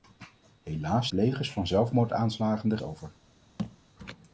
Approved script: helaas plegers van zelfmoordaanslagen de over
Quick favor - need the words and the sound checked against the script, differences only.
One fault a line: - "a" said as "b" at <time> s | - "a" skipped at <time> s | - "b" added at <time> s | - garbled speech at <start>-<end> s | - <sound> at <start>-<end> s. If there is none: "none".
- thud at 3.6-3.8 s